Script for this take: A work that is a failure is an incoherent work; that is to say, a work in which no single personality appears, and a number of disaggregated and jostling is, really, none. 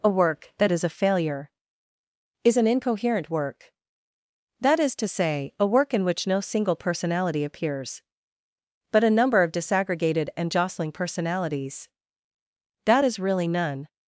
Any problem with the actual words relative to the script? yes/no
yes